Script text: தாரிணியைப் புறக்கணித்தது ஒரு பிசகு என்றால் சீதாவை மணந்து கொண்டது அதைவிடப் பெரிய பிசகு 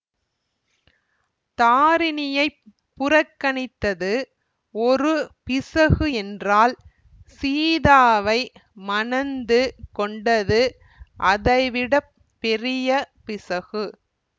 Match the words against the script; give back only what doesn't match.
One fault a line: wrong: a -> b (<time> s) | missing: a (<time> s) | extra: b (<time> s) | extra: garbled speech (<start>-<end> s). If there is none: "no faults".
no faults